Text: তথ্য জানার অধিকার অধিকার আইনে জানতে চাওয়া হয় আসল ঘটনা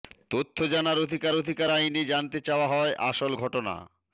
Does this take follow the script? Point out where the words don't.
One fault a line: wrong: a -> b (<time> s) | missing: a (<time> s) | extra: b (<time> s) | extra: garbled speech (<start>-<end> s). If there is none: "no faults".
no faults